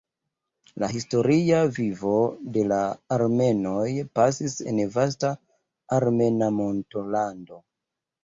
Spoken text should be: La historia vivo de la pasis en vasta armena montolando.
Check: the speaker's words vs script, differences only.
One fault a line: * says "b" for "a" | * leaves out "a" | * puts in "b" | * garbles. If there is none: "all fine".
* puts in "armenoj"